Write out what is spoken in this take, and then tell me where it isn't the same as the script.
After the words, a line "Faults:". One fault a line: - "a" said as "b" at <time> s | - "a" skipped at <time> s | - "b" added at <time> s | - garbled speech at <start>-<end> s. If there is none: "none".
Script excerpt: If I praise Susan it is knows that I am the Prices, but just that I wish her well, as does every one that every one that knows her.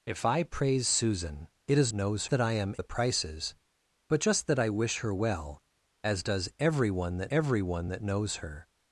If I praise Susan it is knows that I am the Prices, but just that I wish her well, as does every one that every one that knows her.
Faults:
none